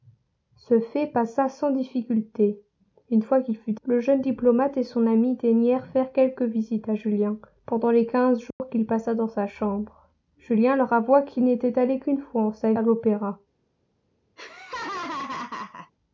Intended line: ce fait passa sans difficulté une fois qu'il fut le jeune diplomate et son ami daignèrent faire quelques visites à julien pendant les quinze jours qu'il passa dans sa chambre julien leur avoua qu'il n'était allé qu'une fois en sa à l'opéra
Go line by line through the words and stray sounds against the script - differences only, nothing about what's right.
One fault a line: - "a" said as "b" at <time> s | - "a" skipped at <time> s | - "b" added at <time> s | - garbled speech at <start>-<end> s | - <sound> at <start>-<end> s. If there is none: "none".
- dropout at 8.5-8.6 s
- laugh at 14.4-15.9 s